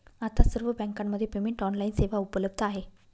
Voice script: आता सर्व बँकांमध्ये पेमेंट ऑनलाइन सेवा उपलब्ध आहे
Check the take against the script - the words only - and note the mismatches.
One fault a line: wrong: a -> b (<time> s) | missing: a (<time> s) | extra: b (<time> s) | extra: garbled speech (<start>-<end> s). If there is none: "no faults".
no faults